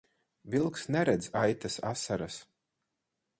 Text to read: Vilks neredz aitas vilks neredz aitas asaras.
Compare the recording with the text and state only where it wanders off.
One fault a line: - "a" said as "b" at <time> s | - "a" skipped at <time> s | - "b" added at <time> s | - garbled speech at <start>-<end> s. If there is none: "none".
- "vilks neredz aitas" skipped at 1.8 s